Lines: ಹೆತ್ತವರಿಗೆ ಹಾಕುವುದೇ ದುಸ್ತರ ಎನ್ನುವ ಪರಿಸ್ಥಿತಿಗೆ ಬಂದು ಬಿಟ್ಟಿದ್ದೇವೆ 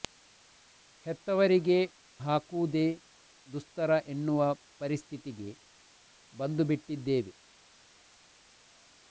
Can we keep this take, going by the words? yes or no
yes